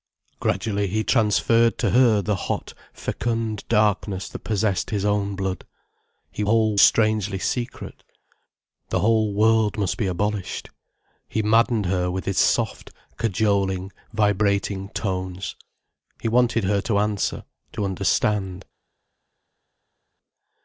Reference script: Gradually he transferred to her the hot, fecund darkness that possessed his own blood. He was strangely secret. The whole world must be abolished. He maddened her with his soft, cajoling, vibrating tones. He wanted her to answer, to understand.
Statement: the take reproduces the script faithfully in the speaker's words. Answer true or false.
false